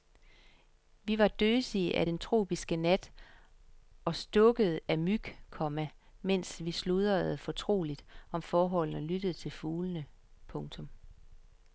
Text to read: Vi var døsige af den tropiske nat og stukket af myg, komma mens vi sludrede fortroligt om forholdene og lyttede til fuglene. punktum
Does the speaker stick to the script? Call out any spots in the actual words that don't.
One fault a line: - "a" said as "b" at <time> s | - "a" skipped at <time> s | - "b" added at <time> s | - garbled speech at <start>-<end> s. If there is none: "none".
none